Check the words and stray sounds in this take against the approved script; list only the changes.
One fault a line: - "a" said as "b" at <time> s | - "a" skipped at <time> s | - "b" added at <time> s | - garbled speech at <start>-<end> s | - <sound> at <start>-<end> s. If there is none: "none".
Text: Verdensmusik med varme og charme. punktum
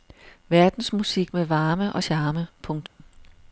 - dropout at 2.9-3.0 s